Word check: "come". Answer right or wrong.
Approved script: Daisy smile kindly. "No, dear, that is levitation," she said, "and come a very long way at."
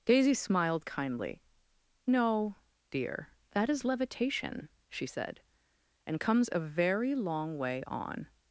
wrong